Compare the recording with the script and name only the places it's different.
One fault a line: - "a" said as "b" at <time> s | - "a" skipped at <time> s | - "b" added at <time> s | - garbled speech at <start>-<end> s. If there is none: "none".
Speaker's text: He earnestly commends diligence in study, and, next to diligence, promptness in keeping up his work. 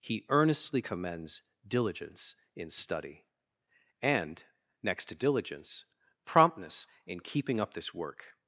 - "his" said as "this" at 7.7 s